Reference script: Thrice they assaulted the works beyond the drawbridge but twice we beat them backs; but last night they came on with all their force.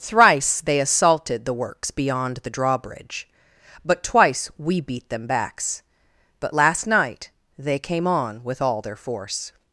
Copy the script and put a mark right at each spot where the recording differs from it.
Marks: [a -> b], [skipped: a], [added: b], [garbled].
Thrice they assaulted the works beyond the drawbridge but twice we beat them backs; but last night they came on with all their force.